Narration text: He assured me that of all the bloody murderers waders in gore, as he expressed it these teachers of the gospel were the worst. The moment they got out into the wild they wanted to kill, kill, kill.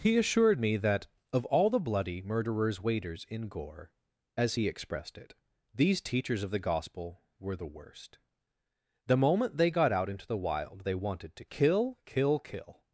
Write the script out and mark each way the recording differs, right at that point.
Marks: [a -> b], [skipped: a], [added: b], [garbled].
He assured me that of all the bloody murderers waders in gore, as he expressed it these teachers of the gospel were the worst. The moment they got out into the wild they wanted to kill, kill, kill.